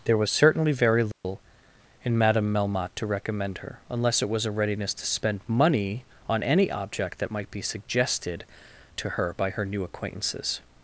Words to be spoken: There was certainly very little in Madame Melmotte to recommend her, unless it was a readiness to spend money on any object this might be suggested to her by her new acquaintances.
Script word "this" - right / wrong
wrong